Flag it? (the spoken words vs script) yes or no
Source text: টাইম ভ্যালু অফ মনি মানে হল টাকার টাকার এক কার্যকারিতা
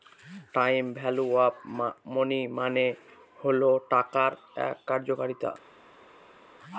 yes